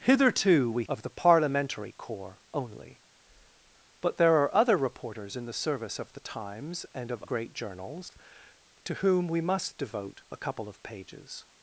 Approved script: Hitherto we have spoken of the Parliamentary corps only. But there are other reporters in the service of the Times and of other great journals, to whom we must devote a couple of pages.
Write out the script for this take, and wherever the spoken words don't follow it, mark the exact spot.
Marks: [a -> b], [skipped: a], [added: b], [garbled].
Hitherto we [skipped: have spoken] of the Parliamentary corps only. But there are other reporters in the service of the Times and of [skipped: other] great journals, to whom we must devote a couple of pages.